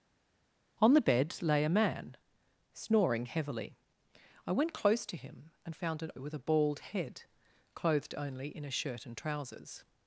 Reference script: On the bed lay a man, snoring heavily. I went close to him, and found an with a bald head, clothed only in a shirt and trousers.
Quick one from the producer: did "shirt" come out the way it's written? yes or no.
yes